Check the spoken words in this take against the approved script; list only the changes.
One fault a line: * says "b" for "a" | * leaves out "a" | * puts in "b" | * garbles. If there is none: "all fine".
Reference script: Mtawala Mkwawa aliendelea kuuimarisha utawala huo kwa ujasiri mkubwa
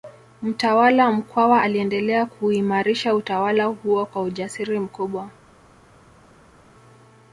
all fine